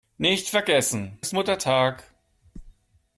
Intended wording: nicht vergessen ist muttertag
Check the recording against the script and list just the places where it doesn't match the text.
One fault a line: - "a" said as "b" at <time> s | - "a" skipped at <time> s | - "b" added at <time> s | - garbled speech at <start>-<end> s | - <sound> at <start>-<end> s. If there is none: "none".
none